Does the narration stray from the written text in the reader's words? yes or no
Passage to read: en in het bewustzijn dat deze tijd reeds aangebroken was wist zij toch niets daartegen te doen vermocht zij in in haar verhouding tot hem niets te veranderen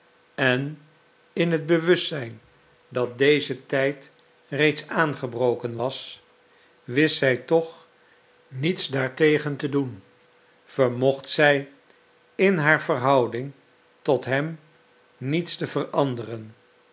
yes